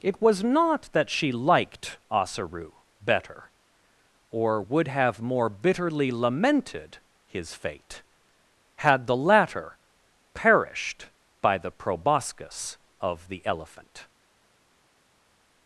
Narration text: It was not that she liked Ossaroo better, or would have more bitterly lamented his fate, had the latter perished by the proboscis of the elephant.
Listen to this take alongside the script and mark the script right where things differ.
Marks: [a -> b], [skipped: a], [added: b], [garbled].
It was not that she liked Ossaroo better, or would have more bitterly lamented his fate, had the latter perished by the proboscis of the elephant.